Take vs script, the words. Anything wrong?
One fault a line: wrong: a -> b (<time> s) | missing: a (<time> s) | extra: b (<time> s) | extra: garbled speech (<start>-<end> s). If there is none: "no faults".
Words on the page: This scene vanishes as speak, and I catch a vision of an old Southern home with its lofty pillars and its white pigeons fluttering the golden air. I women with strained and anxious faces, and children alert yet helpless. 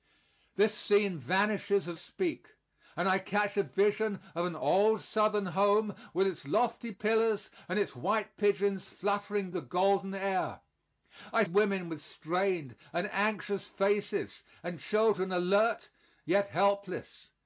no faults